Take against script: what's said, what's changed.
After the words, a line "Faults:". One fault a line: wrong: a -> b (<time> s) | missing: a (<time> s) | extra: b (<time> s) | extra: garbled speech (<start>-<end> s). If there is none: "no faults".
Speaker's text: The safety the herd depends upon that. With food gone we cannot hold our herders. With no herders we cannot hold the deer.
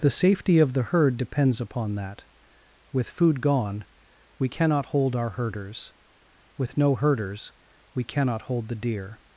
The safety of the herd depends upon that. With food gone we cannot hold our herders. With no herders we cannot hold the deer.
Faults:
extra: of (0.6 s)